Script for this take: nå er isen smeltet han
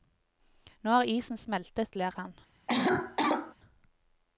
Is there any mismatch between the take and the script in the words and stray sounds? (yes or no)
yes